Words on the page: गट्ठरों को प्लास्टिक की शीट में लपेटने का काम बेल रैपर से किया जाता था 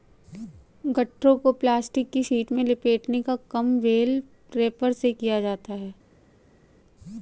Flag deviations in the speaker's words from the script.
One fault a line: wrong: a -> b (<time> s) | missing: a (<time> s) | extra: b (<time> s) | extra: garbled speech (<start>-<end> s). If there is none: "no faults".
wrong: था -> है (5.7 s)